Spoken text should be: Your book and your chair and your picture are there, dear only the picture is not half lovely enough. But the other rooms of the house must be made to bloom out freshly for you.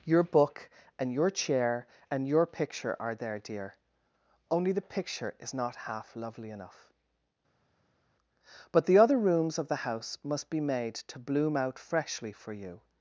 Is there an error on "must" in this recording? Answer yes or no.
no